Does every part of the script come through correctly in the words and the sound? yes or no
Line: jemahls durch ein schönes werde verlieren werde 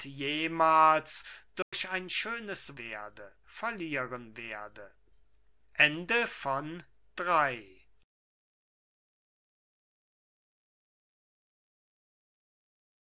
no